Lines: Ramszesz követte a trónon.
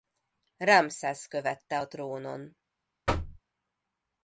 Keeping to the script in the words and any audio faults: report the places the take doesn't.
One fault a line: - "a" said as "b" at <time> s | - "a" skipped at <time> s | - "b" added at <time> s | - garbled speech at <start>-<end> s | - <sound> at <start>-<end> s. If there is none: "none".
- thud at 3.1-3.4 s